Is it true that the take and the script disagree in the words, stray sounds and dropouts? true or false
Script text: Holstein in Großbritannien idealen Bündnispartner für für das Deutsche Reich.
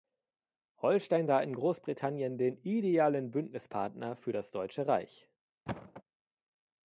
true